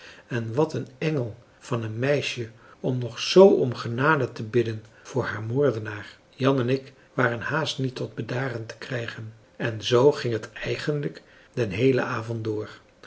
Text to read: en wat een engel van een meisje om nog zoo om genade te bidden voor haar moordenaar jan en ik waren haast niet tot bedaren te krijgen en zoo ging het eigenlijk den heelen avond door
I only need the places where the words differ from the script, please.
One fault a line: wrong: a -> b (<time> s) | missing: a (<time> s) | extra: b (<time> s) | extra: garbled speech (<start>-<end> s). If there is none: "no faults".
no faults